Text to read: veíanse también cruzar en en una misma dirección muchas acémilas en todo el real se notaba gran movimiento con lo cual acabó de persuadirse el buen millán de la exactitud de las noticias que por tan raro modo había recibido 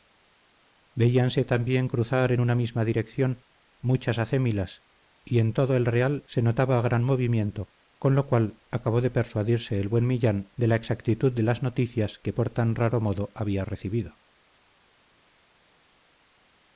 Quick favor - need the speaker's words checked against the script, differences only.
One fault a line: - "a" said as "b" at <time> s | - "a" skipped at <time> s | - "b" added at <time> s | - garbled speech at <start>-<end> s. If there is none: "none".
- "en" skipped at 2.4 s
- "y" added at 5.2 s